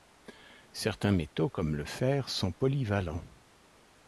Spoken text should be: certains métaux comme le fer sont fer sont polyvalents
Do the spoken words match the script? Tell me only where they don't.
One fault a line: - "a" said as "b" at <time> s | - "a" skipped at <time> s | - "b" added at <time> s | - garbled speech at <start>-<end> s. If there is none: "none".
- "fer sont" skipped at 2.5 s